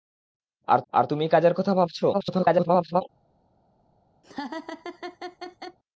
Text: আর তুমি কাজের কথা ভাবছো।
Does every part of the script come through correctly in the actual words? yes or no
no